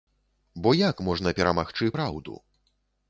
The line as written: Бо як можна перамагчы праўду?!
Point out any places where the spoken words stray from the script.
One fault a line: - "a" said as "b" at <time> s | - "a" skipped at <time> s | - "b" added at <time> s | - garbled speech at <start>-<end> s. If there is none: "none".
none